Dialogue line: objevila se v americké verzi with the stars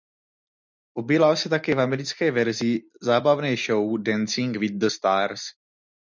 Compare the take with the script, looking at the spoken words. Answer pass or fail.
fail